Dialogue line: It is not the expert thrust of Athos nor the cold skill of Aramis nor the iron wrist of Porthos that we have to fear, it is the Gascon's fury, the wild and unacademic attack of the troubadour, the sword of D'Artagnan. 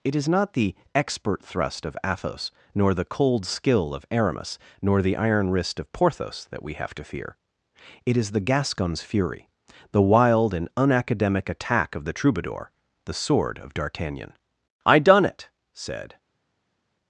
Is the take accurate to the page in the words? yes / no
no